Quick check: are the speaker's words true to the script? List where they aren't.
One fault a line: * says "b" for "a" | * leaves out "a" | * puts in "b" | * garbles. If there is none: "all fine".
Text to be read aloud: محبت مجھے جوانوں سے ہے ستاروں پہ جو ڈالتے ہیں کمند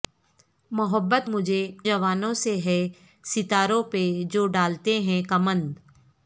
all fine